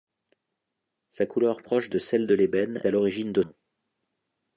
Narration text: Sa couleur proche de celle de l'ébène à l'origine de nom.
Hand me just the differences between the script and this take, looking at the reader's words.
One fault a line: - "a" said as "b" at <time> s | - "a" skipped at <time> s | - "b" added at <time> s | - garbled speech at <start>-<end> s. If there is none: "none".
none